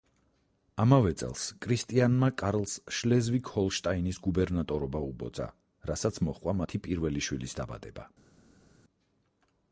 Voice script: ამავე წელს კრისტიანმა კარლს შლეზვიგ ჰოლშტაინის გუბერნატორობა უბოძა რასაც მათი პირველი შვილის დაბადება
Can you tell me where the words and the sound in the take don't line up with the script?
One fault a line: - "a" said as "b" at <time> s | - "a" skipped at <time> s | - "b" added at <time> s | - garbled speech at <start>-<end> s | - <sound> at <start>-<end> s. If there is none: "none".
- "მოჰყვა" added at 6.3 s